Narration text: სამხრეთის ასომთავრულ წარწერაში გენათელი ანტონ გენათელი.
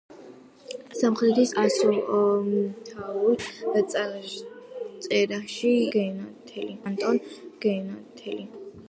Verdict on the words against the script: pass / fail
pass